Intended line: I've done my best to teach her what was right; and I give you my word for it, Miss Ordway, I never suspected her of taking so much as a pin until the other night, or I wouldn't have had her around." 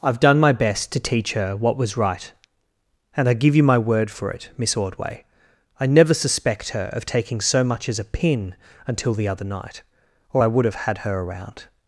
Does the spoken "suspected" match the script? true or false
false